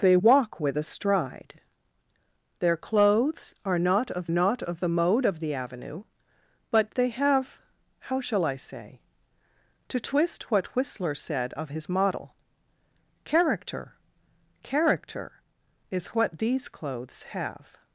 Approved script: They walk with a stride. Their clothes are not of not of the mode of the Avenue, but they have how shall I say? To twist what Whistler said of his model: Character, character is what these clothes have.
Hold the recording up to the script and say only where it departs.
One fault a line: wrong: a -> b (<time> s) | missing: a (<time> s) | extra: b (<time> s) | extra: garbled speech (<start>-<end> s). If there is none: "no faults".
no faults